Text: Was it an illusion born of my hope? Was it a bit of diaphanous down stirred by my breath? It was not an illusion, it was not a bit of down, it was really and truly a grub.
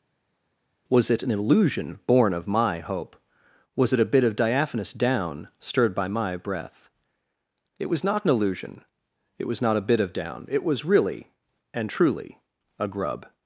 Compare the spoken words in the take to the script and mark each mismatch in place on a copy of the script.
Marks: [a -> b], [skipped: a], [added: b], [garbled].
Was it an illusion born of my hope? Was it a bit of diaphanous down stirred by my breath? It was not an illusion, it was not a bit of down, it was really and truly a grub.